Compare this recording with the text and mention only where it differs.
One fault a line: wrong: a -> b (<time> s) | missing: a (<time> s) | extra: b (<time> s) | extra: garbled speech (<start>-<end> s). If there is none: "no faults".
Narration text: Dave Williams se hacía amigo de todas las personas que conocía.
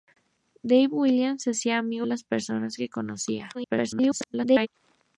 missing: de todas (2.1 s)
extra: garbled speech (3.5-4.7 s)